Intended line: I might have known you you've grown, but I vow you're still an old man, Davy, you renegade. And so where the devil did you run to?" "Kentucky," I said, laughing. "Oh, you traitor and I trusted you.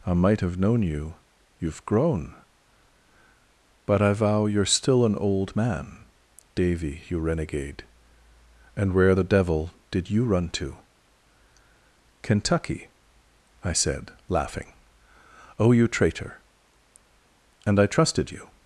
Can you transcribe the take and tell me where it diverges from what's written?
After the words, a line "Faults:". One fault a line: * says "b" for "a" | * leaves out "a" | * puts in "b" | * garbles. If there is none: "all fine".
I might have known you you've grown, but I vow you're still an old man, Davy, you renegade. And where the devil did you run to?" "Kentucky," I said, laughing. "Oh, you traitor and I trusted you.
Faults:
* leaves out "so"